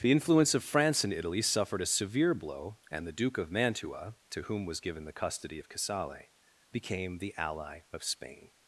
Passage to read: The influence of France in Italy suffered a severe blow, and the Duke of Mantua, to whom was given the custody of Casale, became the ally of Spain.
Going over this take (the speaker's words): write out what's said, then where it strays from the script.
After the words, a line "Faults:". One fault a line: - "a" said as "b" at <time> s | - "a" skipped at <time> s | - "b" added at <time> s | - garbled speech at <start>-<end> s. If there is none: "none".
The influence of France in Italy suffered a severe blow, and the Duke of Mantua, to whom was given the custody of Casale, became the ally of Spain.
Faults:
none